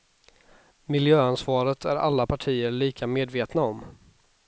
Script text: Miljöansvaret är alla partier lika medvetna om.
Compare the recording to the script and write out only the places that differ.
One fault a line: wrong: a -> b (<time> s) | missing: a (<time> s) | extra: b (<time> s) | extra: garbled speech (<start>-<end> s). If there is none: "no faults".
no faults